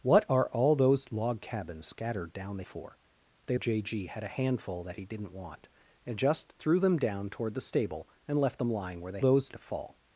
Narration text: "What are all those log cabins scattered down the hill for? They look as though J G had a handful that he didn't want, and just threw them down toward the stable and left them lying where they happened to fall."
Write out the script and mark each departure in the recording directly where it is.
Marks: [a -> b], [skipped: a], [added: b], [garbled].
"What are all those log cabins scattered down the [skipped: hill] for? They [skipped: look as though] J G had a handful that he didn't want, and just threw them down toward the stable and left them lying where they [happened -> those] to fall."